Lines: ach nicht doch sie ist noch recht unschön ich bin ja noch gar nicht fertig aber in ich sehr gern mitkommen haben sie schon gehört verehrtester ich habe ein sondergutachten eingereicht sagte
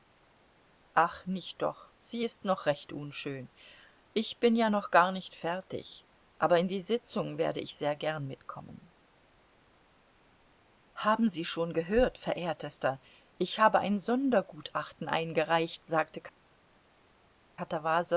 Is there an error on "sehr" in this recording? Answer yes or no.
no